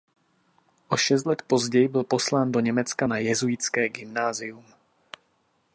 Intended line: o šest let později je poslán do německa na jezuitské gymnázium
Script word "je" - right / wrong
wrong